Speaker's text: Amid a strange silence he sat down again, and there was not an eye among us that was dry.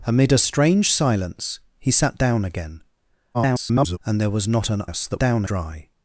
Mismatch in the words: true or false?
true